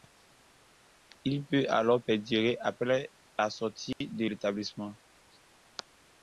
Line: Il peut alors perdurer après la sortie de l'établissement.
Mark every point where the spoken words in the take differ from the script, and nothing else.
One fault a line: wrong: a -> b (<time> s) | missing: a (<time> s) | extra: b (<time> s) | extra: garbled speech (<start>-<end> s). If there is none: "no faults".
no faults